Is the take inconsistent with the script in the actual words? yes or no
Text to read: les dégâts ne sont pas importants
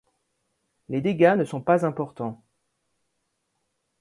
no